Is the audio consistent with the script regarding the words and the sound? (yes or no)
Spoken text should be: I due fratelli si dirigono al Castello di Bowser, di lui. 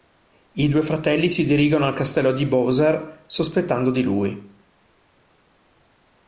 no